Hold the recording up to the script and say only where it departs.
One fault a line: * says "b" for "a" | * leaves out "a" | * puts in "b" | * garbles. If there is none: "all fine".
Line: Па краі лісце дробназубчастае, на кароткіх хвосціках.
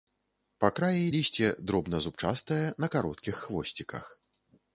all fine